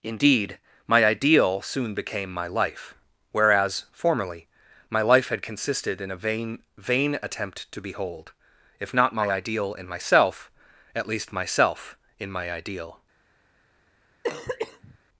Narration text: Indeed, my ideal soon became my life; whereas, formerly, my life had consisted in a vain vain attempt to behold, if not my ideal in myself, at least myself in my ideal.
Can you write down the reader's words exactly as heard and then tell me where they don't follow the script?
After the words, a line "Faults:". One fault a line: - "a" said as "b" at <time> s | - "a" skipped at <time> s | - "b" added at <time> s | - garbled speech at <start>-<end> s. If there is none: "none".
Indeed, my ideal soon became my life; whereas, formerly, my life had consisted in a vain vain attempt to behold, if not my ideal in myself, at least myself in my ideal.
Faults:
none